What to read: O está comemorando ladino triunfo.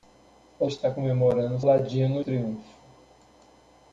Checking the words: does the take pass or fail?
pass